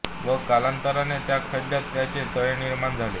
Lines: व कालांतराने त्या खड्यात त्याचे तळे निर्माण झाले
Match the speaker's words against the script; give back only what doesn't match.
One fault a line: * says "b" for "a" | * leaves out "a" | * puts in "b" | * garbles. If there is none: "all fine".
all fine